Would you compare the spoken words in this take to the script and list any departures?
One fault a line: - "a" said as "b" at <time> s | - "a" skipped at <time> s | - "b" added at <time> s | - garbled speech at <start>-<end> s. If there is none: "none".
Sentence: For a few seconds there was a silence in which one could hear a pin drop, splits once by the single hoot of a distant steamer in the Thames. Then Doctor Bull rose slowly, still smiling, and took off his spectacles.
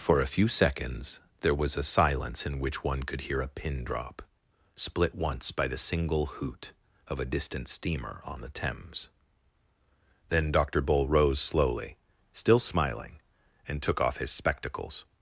- "splits" said as "split" at 4.7 s
- "in" said as "on" at 8.2 s